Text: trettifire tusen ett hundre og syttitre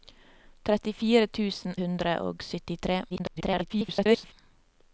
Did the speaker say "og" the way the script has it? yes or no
yes